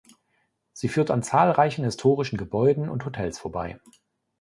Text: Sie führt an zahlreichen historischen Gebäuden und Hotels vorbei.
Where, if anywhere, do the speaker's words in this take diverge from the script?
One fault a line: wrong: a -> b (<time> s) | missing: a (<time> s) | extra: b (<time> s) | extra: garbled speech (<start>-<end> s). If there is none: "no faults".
no faults